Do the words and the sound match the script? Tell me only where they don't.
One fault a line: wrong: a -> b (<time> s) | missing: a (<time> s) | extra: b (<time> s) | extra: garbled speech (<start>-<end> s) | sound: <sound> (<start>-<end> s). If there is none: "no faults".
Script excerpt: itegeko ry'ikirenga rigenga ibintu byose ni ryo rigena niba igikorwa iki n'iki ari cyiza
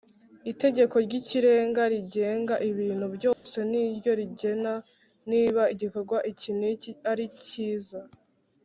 sound: dropout (3.3-3.5 s)